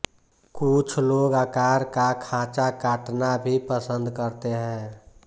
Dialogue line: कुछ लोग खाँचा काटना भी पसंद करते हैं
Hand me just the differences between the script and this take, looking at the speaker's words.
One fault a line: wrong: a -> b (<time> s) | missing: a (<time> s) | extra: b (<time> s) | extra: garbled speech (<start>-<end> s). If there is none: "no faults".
extra: आकार का (1.3 s)